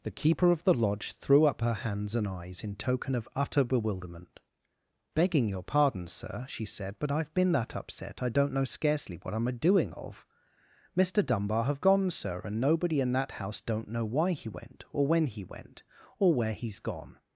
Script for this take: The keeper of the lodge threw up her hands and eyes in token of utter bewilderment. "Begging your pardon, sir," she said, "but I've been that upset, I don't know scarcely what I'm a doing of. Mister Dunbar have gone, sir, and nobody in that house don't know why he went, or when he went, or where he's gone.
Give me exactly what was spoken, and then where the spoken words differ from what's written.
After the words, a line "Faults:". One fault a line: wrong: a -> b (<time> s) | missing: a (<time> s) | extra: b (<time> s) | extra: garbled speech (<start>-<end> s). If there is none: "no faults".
The keeper of the lodge threw up her hands and eyes in token of utter bewilderment. "Begging your pardon, sir," she said, "but I've been that upset, I don't know scarcely what I'm a doing of. Mister Dunbar have gone, sir, and nobody in that house don't know why he went, or when he went, or where he's gone.
Faults:
no faults